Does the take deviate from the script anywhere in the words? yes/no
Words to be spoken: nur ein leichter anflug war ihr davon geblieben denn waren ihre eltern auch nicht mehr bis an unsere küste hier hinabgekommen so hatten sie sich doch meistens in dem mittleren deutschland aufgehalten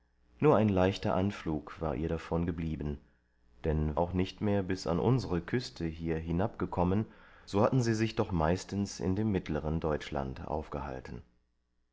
yes